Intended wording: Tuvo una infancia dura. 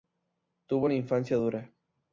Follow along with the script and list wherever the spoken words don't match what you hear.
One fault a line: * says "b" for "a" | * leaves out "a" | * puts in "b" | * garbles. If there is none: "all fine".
all fine